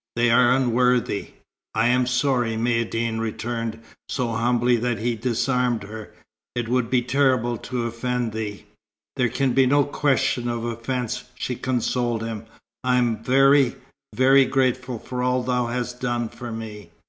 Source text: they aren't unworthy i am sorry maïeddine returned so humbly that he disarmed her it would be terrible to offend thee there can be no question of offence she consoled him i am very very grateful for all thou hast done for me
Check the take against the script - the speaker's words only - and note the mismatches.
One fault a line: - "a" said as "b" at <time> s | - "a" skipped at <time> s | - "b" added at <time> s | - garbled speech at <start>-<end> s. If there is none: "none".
- "aren't" said as "are" at 0.3 s